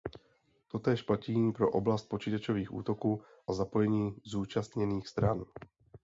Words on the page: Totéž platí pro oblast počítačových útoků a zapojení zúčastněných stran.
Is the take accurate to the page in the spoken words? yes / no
yes